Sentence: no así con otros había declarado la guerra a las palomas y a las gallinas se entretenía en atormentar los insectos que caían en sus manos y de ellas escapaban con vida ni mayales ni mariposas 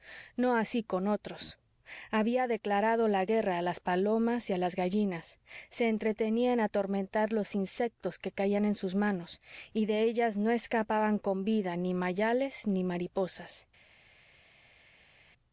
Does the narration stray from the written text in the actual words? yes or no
yes